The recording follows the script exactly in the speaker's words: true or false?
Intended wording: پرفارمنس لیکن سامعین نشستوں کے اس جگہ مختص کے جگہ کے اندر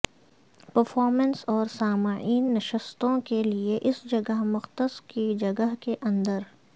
false